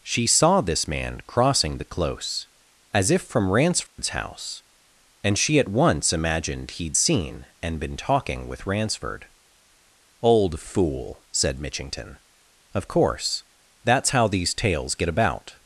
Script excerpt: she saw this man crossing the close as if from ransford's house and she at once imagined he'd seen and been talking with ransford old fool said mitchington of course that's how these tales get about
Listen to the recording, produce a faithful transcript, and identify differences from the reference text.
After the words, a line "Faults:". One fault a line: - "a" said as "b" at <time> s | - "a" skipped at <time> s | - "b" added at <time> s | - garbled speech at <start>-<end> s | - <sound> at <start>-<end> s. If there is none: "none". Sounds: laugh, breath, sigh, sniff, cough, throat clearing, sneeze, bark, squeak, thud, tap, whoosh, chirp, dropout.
she saw this man crossing the close as if from ransford's house and she at once imagined he'd seen and been talking with ransford old fool said mitchington of course that's how these tales get about
Faults:
- dropout at 3.9-4.0 s